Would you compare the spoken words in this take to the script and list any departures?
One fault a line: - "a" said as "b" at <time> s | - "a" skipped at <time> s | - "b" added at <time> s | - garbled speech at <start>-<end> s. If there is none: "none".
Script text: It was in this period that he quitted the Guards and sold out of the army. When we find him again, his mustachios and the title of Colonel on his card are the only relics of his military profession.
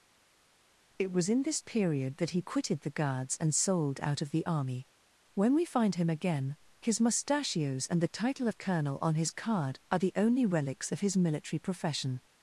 none